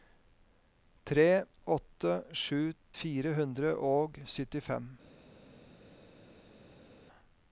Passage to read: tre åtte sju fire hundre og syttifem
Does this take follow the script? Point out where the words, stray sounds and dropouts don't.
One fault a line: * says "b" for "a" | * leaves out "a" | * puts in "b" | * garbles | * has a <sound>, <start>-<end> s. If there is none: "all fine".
all fine